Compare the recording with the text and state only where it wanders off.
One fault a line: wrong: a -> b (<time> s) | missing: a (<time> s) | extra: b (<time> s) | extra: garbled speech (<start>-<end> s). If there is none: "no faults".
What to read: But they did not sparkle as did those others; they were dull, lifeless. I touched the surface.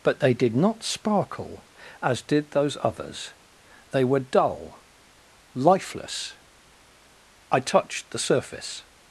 no faults